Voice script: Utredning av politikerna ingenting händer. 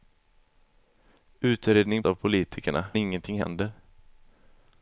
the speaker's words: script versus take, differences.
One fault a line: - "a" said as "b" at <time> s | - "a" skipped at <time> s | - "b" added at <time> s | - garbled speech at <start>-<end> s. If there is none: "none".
none